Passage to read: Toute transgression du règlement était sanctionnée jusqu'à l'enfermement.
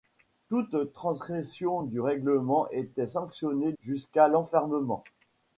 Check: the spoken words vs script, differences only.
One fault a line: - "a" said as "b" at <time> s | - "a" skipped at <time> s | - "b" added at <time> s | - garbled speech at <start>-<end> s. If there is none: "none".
none